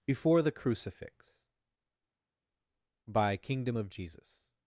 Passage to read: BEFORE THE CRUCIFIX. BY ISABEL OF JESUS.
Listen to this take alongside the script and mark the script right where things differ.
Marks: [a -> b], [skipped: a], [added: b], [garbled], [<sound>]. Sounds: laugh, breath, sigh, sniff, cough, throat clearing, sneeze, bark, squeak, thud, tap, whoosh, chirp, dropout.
BEFORE THE CRUCIFIX. BY [ISABEL -> Kingdom] OF JESUS.